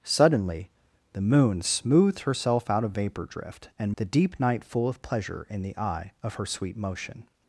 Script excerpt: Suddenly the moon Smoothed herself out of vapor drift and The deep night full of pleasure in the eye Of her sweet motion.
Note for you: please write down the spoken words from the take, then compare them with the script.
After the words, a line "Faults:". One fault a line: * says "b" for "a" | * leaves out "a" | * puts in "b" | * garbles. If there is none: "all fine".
Suddenly the moon Smoothed herself out of vapor drift and The deep night full of pleasure in the eye Of her sweet motion.
Faults:
all fine